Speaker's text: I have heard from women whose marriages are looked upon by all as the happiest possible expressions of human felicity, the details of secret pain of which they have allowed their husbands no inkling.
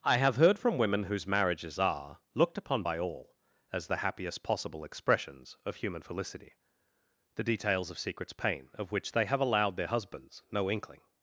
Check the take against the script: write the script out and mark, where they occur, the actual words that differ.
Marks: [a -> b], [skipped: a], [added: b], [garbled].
I have heard from women whose marriages are looked upon by all as the happiest possible expressions of human felicity, the details of [secret -> secrets] pain of which they have allowed their husbands no inkling.